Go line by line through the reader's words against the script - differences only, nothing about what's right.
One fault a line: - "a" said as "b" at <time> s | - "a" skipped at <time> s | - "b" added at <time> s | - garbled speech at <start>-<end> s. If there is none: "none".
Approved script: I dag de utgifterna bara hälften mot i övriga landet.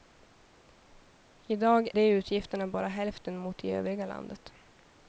none